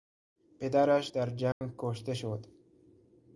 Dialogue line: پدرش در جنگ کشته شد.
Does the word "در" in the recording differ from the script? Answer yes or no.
no